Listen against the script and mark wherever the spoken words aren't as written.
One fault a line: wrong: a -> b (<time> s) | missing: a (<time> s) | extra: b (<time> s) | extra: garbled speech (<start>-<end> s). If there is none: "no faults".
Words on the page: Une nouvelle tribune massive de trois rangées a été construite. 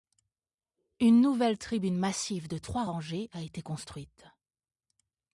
no faults